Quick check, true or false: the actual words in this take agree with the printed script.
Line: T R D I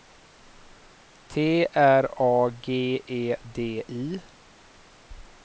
false